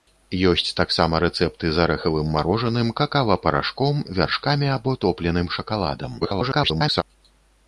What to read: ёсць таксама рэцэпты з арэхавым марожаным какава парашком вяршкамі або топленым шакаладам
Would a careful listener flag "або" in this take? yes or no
no